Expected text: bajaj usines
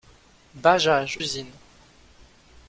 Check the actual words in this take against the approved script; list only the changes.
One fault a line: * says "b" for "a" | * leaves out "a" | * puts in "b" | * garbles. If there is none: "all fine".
all fine